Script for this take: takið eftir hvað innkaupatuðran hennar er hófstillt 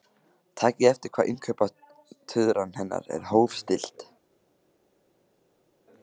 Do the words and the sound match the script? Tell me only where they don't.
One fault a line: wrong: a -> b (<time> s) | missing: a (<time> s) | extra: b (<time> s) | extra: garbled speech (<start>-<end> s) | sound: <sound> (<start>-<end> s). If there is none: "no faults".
no faults